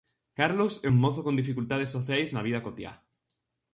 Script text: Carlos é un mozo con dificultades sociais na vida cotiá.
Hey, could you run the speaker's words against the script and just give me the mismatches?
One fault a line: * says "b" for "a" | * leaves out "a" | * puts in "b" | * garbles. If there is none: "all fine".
all fine